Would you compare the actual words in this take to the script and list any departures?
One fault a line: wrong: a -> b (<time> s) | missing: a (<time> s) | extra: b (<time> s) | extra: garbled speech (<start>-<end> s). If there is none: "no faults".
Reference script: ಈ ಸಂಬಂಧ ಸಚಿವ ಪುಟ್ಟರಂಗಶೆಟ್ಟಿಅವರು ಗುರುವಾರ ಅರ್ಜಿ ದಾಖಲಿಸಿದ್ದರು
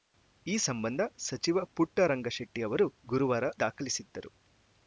missing: ಅರ್ಜಿ (3.4 s)